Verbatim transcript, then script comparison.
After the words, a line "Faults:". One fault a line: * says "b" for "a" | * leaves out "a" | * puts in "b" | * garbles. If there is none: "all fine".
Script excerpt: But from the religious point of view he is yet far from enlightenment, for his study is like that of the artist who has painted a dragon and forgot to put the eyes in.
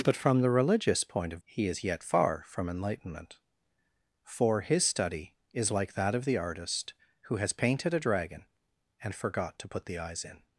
But from the religious point of he is yet far from enlightenment, for his study is like that of the artist who has painted a dragon and forgot to put the eyes in.
Faults:
* leaves out "view"